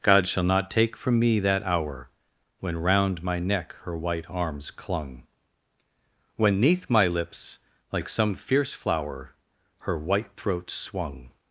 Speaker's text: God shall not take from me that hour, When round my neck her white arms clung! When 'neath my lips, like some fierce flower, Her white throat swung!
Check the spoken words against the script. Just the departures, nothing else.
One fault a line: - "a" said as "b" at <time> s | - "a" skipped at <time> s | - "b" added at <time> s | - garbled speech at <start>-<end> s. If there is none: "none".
none